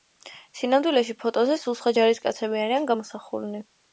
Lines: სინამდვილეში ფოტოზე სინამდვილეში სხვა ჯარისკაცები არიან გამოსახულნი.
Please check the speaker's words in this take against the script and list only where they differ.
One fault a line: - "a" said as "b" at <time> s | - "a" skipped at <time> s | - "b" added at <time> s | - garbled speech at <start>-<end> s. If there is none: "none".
- "სინამდვილეში" said as "სულ" at 1.6 s